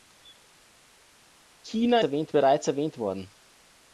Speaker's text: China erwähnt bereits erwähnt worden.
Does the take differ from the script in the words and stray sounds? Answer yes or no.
no